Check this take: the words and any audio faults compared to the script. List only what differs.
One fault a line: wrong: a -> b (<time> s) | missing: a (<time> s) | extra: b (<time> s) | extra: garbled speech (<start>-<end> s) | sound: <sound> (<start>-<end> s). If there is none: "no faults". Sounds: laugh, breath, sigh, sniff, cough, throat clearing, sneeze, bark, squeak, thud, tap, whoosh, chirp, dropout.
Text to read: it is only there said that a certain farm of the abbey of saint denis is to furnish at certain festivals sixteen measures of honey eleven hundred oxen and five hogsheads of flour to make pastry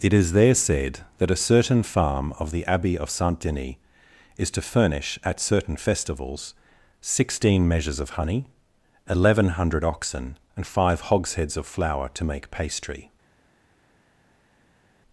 missing: only (0.3 s)